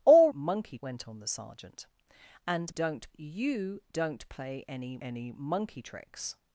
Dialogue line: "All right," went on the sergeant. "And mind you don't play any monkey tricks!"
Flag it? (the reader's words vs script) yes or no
yes